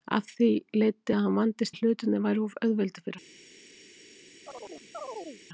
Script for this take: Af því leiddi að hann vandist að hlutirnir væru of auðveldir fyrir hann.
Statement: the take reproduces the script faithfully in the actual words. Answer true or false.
true